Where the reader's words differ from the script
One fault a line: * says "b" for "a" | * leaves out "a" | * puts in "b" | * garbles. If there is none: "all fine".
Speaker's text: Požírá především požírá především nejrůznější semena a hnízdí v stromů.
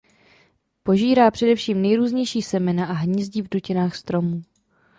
* leaves out "požírá především"
* puts in "dutinách"